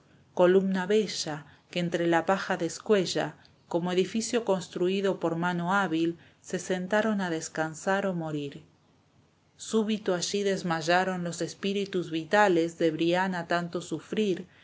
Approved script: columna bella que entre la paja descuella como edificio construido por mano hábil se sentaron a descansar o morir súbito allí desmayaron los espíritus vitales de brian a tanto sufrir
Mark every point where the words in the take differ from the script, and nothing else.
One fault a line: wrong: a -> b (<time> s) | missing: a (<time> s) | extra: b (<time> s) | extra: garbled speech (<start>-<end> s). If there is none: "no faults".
no faults